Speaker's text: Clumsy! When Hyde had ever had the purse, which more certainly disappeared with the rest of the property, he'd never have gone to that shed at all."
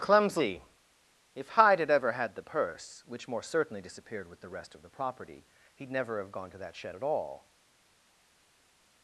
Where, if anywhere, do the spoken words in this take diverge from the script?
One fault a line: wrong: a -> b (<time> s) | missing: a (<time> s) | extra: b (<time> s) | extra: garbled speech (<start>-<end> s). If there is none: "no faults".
wrong: When -> If (1.4 s)